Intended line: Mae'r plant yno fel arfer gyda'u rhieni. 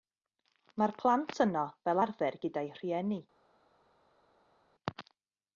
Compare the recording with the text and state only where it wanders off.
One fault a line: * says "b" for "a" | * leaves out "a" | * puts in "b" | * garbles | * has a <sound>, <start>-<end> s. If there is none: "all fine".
all fine